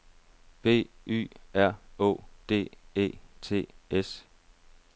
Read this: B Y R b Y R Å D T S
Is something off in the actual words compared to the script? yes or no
yes